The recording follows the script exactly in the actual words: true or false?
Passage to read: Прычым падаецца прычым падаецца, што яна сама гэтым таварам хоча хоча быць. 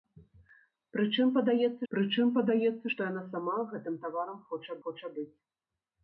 true